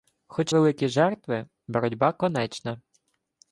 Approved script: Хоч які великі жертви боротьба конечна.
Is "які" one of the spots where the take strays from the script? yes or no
yes